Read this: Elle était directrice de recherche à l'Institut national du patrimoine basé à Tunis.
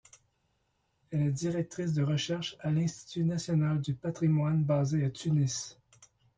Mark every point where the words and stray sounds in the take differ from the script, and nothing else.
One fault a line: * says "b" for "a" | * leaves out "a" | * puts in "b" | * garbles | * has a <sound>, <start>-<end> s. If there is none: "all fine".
* says "est" for "était"